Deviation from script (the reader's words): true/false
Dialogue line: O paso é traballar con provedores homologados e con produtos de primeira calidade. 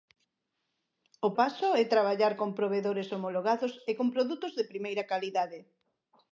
false